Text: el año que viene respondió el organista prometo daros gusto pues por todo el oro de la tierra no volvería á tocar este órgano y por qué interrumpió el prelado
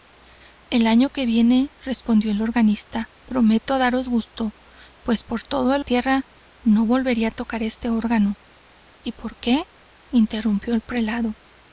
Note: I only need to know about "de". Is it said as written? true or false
false